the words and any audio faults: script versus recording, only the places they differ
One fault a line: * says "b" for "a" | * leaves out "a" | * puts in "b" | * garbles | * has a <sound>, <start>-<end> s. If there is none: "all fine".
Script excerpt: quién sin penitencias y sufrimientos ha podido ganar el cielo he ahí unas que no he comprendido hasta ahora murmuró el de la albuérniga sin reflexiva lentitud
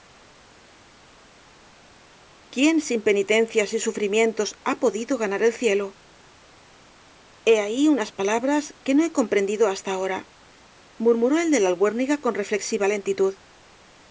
* puts in "palabras"
* says "con" for "sin"